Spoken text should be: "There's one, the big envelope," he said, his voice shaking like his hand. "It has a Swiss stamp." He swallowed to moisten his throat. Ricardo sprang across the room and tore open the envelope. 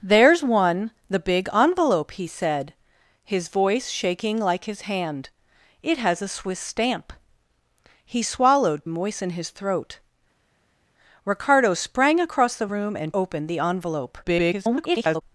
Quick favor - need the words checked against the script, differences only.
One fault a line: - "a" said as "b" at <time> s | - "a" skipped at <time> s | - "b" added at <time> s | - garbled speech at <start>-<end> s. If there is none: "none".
- "to" skipped at 8.9 s
- "tore" skipped at 13.1 s
- garbled speech at 14.2-15.2 s